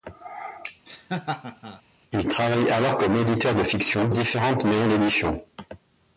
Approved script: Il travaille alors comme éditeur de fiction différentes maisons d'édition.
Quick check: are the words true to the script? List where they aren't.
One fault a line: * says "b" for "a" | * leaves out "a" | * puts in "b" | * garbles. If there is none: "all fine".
all fine